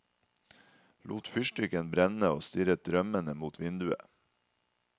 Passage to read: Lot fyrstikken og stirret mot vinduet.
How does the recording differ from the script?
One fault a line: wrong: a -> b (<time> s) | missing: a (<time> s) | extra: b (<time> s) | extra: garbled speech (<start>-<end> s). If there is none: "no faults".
extra: brenne (1.9 s)
extra: drømmende (2.9 s)